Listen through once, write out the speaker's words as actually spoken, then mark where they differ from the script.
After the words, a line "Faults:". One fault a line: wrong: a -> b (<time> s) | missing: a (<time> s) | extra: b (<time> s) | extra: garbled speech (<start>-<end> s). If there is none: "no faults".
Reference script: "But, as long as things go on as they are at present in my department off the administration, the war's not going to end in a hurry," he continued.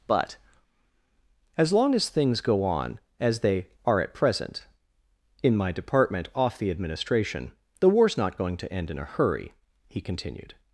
"But, as long as things go on as they are at present in my department off the administration, the war's not going to end in a hurry," he continued.
Faults:
no faults